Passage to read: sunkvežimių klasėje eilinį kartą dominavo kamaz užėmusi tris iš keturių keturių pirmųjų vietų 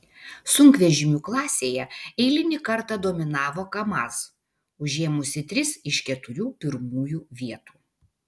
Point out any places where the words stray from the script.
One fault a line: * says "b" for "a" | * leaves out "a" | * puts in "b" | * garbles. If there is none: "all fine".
* leaves out "keturių"